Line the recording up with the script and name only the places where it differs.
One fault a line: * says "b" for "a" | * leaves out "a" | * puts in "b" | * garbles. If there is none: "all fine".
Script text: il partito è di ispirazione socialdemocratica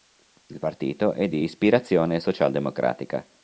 all fine